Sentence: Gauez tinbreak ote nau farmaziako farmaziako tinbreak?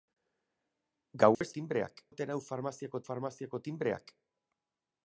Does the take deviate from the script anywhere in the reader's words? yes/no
no